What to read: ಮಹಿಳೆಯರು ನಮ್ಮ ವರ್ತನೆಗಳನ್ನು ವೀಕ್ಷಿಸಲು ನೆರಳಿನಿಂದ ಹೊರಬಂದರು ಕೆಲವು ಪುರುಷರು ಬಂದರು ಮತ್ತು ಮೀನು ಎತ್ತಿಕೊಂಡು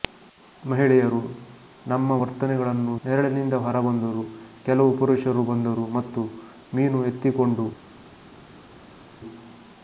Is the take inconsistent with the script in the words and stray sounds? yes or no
yes